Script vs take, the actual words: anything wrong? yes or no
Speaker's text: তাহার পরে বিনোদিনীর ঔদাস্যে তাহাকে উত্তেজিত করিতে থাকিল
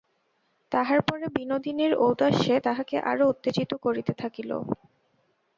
yes